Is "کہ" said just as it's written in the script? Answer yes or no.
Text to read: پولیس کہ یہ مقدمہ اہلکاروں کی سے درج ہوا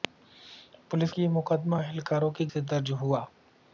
yes